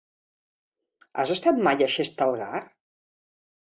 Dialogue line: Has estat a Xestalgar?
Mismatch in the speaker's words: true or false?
true